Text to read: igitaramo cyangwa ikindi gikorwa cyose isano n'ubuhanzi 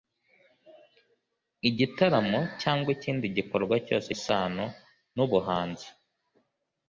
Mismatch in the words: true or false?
false